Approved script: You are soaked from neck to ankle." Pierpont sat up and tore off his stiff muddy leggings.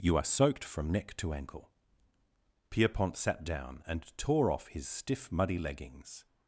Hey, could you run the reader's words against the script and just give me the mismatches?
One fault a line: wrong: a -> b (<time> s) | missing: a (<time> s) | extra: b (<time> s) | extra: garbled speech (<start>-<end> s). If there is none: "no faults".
wrong: up -> down (3.4 s)